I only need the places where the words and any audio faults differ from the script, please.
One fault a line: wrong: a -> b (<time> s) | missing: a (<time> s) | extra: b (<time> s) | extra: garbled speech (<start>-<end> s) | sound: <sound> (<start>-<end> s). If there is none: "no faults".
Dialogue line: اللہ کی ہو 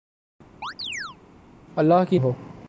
sound: chirp (0.6-1.2 s)